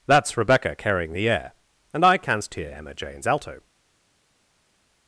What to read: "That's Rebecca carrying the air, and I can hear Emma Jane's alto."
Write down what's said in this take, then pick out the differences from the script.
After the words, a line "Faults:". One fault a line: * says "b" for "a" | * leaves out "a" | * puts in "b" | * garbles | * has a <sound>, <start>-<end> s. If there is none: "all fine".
"That's Rebecca carrying the air, and I canst hear Emma Jane's alto."
Faults:
* says "canst" for "can"